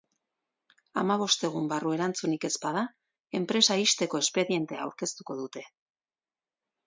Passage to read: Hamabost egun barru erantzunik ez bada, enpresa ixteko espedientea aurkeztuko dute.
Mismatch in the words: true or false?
false